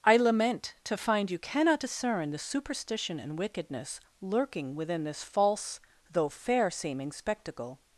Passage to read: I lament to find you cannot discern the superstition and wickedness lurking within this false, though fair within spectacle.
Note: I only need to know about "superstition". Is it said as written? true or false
true